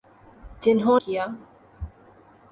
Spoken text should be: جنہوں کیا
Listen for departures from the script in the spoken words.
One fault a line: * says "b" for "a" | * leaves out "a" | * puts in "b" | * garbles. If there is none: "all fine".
all fine